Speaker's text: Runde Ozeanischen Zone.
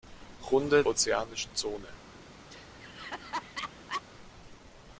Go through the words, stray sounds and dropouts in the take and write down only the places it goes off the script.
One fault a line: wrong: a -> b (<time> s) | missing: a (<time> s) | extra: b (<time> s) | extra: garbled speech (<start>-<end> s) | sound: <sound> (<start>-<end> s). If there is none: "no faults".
sound: laugh (2.5-4.0 s)